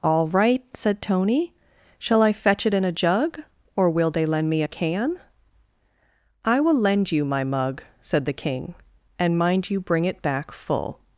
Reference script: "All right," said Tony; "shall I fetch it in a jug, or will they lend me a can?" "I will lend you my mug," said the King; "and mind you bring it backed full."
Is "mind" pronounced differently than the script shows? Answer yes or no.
no